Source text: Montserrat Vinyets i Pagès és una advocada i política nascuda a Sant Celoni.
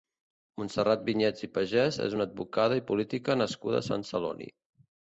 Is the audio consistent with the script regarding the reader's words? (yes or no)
yes